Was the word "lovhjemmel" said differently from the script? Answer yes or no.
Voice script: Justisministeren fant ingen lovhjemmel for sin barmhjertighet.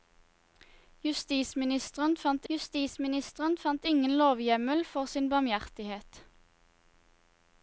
no